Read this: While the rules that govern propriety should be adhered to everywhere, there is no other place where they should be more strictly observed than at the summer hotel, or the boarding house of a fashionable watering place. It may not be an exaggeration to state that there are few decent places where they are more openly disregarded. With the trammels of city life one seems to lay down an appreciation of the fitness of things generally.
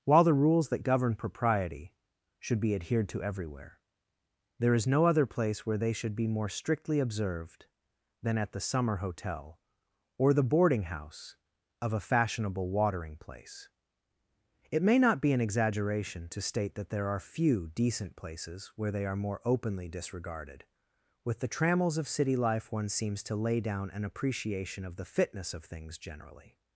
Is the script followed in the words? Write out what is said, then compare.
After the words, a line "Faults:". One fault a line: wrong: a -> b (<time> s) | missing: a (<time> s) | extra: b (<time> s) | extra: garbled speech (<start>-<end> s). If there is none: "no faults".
While the rules that govern propriety should be adhered to everywhere, there is no other place where they should be more strictly observed than at the summer hotel, or the boarding house of a fashionable watering place. It may not be an exaggeration to state that there are few decent places where they are more openly disregarded. With the trammels of city life one seems to lay down an appreciation of the fitness of things generally.
Faults:
no faults